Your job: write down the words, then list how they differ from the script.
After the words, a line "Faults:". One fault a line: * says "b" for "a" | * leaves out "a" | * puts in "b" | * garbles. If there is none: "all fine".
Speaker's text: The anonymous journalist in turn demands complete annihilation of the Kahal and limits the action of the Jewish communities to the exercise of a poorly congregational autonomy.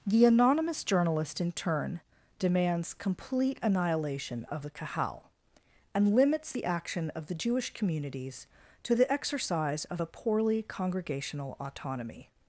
The anonymous journalist in turn demands complete annihilation of the Kahal and limits the action of the Jewish communities to the exercise of a poorly congregational autonomy.
Faults:
all fine